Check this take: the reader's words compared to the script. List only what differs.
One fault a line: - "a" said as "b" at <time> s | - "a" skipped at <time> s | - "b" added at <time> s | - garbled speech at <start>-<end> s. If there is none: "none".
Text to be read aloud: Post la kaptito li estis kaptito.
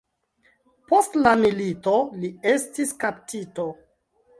- "kaptito" said as "milito" at 1.4 s